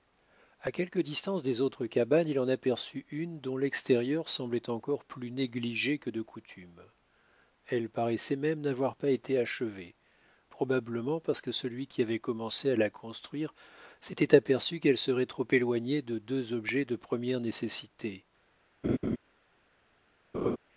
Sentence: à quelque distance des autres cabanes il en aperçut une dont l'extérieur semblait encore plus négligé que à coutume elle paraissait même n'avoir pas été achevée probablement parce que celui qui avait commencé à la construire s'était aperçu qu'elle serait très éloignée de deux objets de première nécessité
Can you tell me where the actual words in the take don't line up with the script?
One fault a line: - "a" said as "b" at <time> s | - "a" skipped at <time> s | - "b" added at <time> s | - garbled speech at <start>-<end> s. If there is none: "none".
- "à" said as "de" at 6.1 s
- "très" said as "trop" at 15.3 s